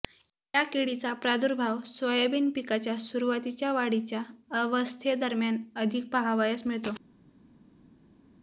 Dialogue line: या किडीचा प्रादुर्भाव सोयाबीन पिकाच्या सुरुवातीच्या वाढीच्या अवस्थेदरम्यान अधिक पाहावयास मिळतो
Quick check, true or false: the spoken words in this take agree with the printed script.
true